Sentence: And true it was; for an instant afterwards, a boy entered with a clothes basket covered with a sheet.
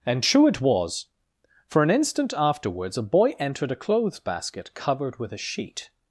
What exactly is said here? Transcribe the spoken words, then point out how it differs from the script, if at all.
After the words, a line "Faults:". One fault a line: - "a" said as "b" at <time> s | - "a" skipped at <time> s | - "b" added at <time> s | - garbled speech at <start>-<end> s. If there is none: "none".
And true it was; for an instant afterwards, a boy entered a clothes basket covered with a sheet.
Faults:
- "with" skipped at 3.7 s